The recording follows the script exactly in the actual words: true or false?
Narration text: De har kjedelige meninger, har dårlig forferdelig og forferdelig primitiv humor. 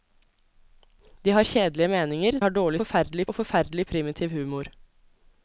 true